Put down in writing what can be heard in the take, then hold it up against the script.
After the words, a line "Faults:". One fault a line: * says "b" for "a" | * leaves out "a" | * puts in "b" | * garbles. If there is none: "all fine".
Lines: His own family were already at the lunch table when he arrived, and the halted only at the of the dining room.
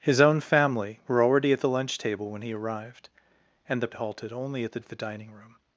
His own family were already at the lunch table when he arrived, and the halted only at the of the dining room.
Faults:
all fine